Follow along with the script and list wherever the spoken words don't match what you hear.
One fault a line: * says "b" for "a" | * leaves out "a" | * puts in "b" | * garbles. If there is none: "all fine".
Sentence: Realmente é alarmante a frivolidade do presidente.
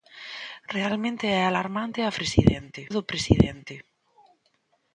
* says "presidente" for "frivolidade"